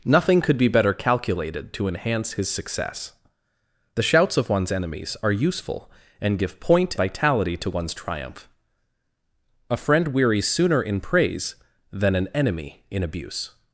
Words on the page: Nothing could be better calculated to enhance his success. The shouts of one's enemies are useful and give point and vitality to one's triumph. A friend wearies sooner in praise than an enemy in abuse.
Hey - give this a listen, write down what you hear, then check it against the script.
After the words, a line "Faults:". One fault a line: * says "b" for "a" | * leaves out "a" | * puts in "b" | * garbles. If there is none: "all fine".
Nothing could be better calculated to enhance his success. The shouts of one's enemies are useful and give point vitality to one's triumph. A friend wearies sooner in praise than an enemy in abuse.
Faults:
* leaves out "and"